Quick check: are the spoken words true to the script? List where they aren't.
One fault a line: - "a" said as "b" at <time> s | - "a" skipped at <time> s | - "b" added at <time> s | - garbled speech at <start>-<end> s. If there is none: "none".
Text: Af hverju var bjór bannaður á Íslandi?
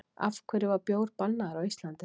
none